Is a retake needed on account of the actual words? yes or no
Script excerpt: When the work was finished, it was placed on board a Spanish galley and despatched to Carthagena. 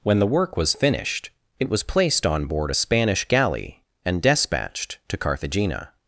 no